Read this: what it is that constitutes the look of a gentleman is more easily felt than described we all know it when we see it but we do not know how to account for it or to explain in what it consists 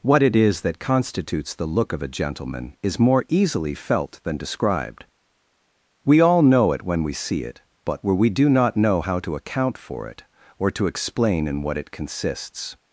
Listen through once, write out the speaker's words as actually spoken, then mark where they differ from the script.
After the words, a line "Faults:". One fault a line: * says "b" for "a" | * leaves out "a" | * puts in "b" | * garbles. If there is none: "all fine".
what it is that constitutes the look of a gentleman is more easily felt than described we all know it when we see it but where we do not know how to account for it or to explain in what it consists
Faults:
* puts in "where"